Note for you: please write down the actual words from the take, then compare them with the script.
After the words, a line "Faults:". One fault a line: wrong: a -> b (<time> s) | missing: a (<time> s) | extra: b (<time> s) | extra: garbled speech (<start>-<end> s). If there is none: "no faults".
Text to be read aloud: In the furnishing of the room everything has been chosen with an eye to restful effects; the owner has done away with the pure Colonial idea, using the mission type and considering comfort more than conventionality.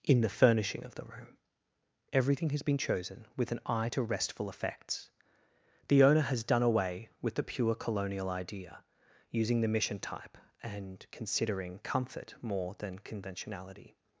In the furnishing of the room everything has been chosen with an eye to restful effects; the owner has done away with the pure Colonial idea, using the mission type and considering comfort more than conventionality.
Faults:
no faults